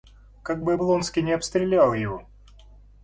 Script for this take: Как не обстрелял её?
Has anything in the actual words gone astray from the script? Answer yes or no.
yes